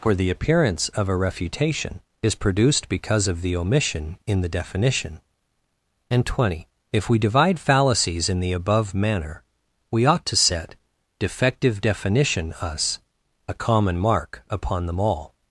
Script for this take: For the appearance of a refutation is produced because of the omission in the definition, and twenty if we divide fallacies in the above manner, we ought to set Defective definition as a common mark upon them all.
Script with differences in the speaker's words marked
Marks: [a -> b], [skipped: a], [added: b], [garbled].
For the appearance of a refutation is produced because of the omission in the definition, and twenty if we divide fallacies in the above manner, we ought to set Defective definition [as -> us] a common mark upon them all.